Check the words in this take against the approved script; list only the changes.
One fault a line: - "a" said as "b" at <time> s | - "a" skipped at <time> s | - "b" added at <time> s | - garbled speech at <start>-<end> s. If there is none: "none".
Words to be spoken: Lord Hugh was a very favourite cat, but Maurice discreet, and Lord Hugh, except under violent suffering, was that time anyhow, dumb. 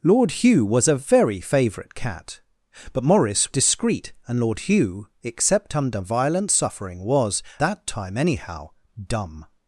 none